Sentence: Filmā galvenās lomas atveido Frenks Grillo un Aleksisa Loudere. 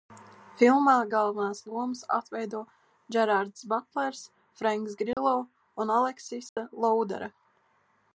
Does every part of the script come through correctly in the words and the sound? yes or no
no